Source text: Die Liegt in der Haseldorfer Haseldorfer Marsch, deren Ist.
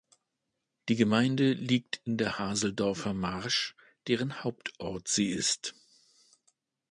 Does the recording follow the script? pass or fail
fail